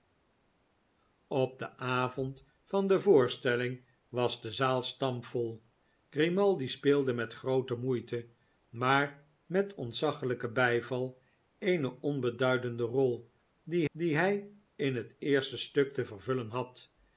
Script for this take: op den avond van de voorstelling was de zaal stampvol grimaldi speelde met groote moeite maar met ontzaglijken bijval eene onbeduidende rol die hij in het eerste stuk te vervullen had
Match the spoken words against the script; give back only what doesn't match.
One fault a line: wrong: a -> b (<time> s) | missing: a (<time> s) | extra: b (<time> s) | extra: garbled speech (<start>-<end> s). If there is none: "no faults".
extra: die (13.9 s)